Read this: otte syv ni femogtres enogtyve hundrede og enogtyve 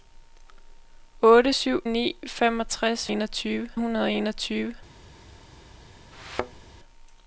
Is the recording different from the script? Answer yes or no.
no